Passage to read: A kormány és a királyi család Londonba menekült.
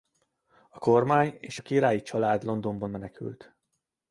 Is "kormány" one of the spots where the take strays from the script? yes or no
no